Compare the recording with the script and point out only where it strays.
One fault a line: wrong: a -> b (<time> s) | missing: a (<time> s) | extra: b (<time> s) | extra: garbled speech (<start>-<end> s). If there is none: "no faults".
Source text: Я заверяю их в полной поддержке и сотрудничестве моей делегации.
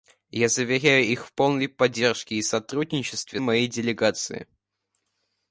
no faults